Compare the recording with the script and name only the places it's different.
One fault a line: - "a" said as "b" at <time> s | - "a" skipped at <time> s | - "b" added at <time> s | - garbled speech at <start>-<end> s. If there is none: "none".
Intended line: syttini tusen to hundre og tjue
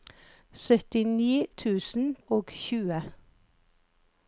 - "to hundre" skipped at 2.0 s